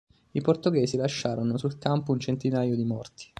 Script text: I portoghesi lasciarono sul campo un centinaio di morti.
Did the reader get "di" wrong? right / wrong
right